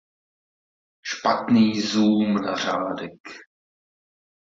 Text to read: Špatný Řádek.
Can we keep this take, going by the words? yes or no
no